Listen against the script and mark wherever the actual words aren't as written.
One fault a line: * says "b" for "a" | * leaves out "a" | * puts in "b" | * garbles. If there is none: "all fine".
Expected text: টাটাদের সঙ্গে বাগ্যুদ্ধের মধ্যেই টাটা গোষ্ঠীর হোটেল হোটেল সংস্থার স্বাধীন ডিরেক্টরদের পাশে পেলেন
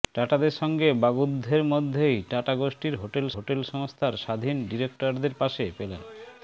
all fine